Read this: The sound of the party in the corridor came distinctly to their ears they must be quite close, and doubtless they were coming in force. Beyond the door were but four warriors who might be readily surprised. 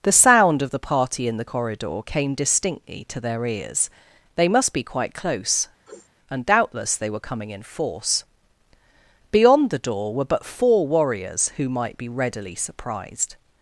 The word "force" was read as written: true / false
true